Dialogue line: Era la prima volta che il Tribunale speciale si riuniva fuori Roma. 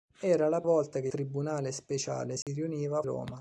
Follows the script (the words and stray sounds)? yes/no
no